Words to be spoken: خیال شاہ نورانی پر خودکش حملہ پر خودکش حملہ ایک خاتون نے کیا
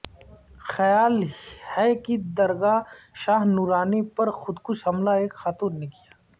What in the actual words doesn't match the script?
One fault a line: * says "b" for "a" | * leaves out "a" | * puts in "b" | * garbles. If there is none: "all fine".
* says "ہے کہ درگاہ شاہ نورانی" for "شاہ نورانی پر خودکش حملہ"